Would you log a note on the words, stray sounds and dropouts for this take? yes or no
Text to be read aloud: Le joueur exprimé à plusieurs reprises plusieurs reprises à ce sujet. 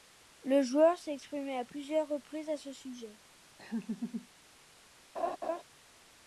yes